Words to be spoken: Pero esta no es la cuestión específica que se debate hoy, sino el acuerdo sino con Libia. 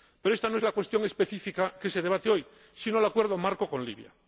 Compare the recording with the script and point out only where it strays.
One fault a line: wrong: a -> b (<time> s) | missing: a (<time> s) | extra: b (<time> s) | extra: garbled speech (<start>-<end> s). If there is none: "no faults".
wrong: sino -> marco (3.4 s)